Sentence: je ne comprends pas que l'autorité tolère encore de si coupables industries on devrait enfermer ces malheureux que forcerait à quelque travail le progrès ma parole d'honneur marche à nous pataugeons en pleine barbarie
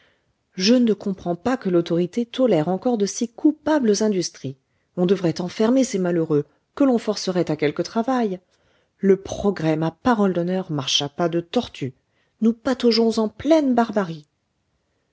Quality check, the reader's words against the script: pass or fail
fail